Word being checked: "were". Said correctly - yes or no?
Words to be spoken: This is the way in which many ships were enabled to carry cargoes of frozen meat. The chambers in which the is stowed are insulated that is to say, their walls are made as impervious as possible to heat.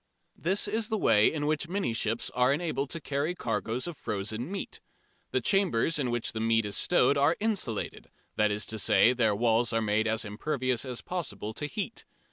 no